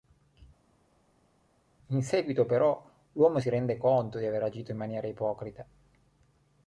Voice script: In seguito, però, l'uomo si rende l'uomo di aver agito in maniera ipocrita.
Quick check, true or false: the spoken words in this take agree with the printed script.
false